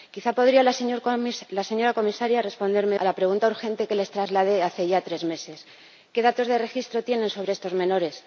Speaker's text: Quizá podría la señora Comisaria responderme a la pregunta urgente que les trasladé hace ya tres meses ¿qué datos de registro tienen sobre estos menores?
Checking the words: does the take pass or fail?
pass